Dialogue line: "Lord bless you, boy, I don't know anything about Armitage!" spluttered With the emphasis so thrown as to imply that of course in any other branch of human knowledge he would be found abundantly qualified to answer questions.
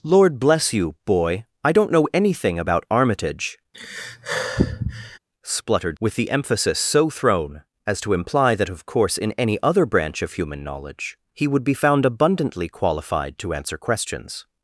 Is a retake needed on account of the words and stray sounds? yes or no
yes